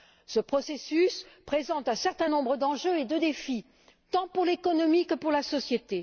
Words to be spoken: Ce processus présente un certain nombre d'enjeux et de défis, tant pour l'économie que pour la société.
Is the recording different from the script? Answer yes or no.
no